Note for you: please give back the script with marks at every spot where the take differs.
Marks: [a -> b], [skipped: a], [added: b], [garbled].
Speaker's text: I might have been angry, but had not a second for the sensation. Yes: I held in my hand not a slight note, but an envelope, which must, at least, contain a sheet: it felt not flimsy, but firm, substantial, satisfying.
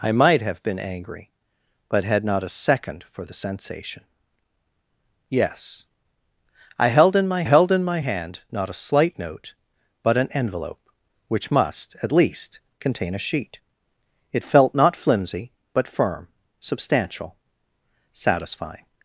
I might have been angry, but had not a second for the sensation. Yes: I held in my [added: held in my] hand not a slight note, but an envelope, which must, at least, contain a sheet: it felt not flimsy, but firm, substantial, satisfying.